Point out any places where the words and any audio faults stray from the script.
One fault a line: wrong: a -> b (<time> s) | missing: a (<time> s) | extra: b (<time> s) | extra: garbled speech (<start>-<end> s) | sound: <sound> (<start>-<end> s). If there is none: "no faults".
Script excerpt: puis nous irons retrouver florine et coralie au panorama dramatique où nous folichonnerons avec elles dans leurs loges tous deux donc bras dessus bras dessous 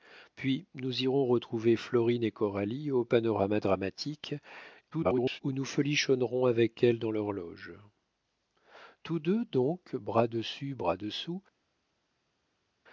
extra: garbled speech (4.9-5.4 s)